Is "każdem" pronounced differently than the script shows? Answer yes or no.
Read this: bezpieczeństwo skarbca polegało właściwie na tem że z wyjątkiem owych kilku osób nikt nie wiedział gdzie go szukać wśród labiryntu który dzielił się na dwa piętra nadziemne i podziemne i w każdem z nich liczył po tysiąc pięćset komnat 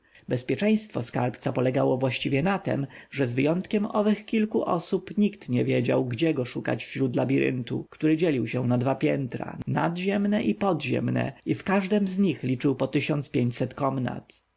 no